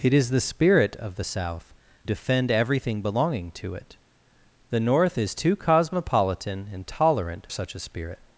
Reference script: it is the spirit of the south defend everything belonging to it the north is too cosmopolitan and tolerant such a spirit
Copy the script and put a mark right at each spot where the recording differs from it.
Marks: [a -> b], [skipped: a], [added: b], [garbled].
it is the spirit of the south defend everything belonging to it the north is too cosmopolitan and tolerant such a spirit